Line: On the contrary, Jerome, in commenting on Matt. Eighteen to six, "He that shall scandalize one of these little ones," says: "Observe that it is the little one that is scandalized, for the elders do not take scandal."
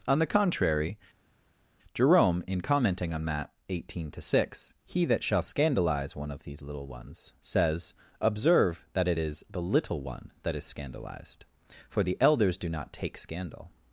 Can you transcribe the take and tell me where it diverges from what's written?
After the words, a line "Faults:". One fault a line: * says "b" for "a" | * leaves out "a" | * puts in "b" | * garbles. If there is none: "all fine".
On the contrary, Jerome, in commenting on Matt. Eighteen to six, "He that shall scandalize one of these little ones," says: "Observe that it is the little one that is scandalized, for the elders do not take scandal."
Faults:
all fine